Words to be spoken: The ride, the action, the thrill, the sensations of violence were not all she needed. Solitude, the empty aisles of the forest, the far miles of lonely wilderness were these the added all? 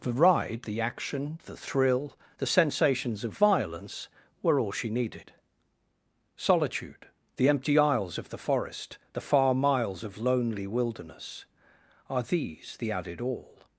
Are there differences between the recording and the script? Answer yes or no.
yes